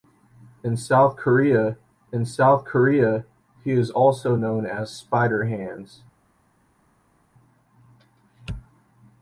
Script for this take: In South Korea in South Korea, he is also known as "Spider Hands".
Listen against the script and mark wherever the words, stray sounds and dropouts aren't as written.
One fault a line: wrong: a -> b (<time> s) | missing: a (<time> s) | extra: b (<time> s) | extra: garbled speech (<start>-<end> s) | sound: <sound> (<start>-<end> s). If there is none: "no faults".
no faults